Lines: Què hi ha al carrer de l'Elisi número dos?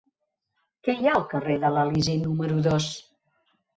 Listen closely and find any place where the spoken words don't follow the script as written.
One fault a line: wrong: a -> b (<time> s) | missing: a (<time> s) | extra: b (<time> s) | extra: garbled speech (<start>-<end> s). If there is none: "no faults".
no faults